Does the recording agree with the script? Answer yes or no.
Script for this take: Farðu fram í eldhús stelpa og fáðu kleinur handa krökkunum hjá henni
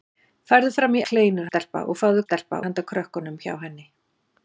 no